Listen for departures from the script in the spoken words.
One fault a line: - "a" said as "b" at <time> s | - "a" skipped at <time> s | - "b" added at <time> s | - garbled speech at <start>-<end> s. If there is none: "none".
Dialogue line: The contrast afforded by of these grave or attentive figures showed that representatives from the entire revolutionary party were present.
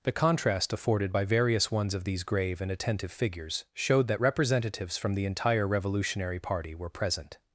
- "various ones" added at 1.2 s
- "or" said as "and" at 2.6 s